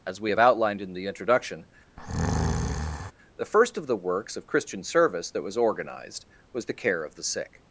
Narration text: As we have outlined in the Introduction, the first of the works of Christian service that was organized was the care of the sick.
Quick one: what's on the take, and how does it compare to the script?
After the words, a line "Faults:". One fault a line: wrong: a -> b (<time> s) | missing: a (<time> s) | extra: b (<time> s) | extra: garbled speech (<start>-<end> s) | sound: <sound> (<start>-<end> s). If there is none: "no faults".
As we have outlined in the Introduction, the first of the works of Christian service that was organized was the care of the sick.
Faults:
sound: breath (2.0-3.1 s)